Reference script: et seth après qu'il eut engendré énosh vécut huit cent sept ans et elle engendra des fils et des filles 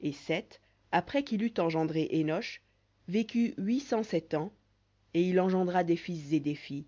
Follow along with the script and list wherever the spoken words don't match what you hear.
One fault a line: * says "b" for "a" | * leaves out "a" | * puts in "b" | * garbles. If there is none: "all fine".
* says "il" for "elle"